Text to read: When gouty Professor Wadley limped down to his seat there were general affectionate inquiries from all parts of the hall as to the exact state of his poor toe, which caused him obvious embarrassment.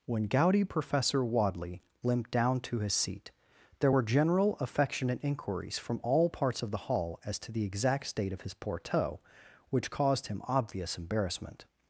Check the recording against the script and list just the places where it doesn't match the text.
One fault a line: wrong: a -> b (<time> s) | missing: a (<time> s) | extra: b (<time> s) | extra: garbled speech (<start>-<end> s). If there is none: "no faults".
no faults